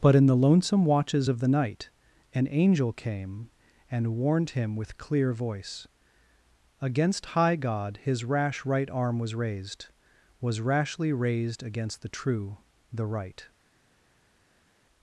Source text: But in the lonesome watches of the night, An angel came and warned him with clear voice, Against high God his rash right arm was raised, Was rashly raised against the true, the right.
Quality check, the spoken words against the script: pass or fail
pass